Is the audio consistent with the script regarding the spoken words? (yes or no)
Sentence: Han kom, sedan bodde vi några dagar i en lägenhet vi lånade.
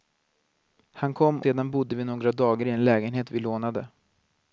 yes